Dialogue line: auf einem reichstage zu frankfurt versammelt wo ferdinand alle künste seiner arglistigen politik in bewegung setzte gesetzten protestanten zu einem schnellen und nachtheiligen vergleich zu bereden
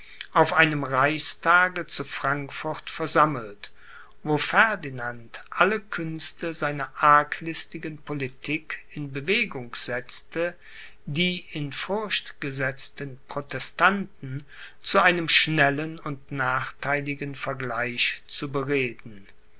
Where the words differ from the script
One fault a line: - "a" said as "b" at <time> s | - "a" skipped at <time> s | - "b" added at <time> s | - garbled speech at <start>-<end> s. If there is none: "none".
- "die in furcht" added at 11.1 s